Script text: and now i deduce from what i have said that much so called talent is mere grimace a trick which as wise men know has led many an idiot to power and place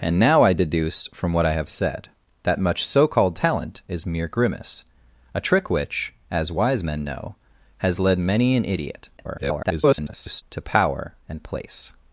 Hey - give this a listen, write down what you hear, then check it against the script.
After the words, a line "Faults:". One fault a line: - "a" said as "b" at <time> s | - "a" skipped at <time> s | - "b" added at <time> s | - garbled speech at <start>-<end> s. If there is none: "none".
and now i deduce from what i have said that much so called talent is mere grimace a trick which as wise men know has led many an idiot [garbled] to power and place
Faults:
- garbled speech at 9.2-10.4 s